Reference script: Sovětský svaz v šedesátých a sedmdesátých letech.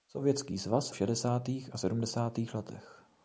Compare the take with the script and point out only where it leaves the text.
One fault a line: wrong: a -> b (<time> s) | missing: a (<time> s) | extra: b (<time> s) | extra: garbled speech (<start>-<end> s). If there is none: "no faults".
no faults